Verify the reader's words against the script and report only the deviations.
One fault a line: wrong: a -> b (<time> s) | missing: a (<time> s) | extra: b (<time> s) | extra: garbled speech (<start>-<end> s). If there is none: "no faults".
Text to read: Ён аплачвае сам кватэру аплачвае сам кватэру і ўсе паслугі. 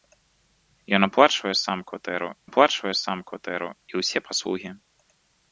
no faults